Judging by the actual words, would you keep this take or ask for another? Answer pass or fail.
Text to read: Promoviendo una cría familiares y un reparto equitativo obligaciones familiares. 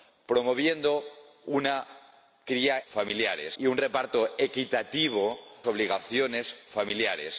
pass